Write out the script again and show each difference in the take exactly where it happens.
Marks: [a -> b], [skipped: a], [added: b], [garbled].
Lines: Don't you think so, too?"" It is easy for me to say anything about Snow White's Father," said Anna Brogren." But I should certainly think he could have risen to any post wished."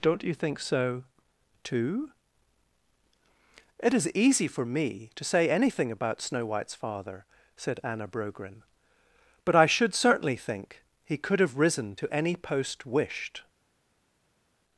Don't you think so, too?"" It is easy for me to say anything about Snow White's Father," said Anna Brogren." But I should certainly think he could have risen to any post wished."